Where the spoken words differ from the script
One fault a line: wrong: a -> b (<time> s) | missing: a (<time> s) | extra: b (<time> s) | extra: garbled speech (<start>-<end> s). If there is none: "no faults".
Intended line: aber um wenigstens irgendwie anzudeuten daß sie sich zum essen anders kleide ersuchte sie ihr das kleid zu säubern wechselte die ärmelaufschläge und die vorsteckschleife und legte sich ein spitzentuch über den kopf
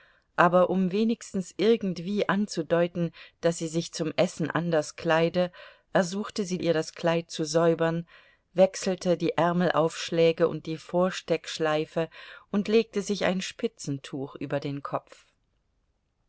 no faults